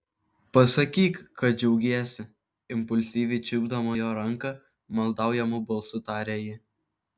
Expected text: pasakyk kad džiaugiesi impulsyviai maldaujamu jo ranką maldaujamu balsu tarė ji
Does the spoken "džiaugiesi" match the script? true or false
true